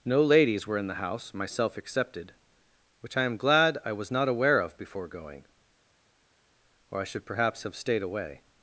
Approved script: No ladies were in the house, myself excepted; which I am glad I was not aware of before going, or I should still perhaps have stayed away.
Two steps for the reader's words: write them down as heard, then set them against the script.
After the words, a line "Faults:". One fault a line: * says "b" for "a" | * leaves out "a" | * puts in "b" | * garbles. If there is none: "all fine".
No ladies were in the house, myself excepted; which I am glad I was not aware of before going, or I should perhaps have stayed away.
Faults:
* leaves out "still"